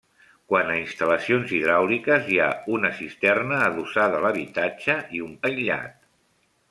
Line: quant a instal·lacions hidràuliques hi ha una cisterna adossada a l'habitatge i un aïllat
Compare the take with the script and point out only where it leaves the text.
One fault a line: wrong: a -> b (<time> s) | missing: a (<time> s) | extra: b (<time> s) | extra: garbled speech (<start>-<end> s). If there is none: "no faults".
no faults